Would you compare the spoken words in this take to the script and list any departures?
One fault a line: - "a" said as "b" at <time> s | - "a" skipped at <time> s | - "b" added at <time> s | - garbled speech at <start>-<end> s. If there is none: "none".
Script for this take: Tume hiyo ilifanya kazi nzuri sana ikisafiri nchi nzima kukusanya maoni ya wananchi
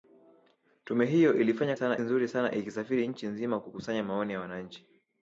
- "kazi" said as "sana" at 1.7 s